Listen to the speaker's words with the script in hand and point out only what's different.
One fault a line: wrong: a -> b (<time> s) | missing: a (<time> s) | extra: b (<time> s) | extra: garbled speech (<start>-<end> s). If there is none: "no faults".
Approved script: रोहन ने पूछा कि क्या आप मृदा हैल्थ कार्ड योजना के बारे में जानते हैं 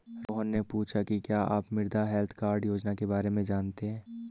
no faults